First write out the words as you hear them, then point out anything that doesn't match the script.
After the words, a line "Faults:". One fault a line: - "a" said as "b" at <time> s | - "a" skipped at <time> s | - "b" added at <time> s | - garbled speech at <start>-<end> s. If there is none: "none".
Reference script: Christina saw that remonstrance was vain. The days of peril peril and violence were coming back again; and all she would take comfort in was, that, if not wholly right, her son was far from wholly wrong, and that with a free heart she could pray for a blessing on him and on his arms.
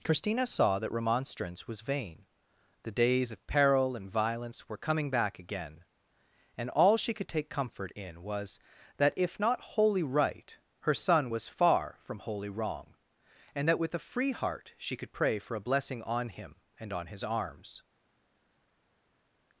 Christina saw that remonstrance was vain. The days of peril and violence were coming back again; and all she could take comfort in was, that, if not wholly right, her son was far from wholly wrong, and that with a free heart she could pray for a blessing on him and on his arms.
Faults:
- "peril" skipped at 4.0 s
- "would" said as "could" at 7.1 s